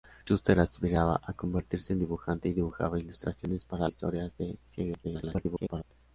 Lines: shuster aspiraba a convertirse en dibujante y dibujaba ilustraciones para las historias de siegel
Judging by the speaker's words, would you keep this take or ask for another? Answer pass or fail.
fail